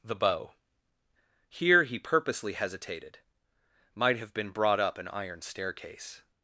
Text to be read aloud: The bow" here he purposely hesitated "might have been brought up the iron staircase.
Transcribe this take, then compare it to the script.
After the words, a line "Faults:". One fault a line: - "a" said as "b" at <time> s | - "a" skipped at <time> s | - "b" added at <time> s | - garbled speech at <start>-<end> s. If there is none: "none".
The bow" here he purposely hesitated "might have been brought up an iron staircase.
Faults:
- "the" said as "an" at 5.0 s